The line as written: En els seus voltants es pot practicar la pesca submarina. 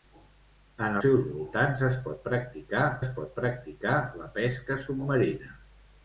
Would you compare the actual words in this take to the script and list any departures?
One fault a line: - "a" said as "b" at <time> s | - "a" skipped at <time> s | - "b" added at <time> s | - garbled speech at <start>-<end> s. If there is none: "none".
- "els" skipped at 1.0 s
- "es pot practicar" added at 3.0 s